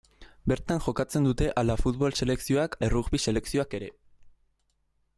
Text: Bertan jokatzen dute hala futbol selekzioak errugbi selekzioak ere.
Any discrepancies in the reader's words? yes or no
no